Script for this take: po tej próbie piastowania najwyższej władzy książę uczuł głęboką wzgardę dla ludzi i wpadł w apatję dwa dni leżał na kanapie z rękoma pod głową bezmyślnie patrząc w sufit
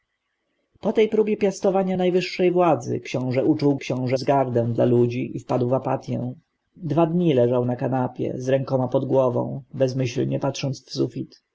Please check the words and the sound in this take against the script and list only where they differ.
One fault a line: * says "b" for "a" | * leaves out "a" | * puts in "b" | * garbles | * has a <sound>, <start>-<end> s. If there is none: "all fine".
* says "książę" for "głęboką"